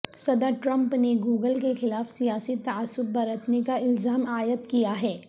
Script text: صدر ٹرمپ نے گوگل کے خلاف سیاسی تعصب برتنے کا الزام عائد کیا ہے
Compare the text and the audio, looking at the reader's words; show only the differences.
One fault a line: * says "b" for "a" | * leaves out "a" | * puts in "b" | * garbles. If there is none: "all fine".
all fine